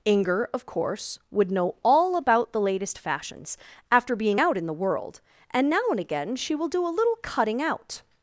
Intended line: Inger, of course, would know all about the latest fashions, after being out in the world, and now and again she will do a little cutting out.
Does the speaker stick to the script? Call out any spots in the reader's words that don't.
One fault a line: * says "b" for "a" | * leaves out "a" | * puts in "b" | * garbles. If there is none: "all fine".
all fine